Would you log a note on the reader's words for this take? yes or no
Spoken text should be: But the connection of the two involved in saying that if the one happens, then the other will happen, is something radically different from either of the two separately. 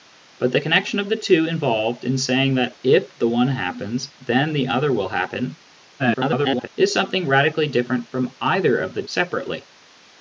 yes